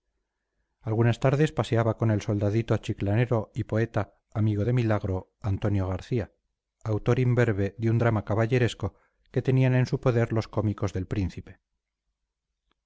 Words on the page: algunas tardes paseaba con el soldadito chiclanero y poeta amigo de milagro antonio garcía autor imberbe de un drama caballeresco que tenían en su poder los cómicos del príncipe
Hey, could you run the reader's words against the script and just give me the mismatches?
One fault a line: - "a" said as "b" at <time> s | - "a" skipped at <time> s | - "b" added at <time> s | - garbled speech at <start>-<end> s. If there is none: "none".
none